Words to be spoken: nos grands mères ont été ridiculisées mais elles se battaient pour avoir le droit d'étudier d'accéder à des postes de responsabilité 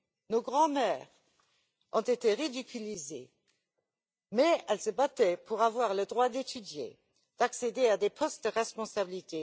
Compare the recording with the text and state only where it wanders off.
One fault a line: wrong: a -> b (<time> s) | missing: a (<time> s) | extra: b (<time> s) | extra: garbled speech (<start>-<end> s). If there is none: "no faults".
no faults